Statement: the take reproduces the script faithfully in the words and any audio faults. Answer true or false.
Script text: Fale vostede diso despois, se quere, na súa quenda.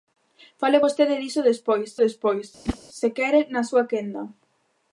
false